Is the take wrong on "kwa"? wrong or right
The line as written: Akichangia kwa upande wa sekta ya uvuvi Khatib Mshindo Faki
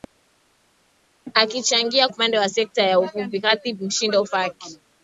wrong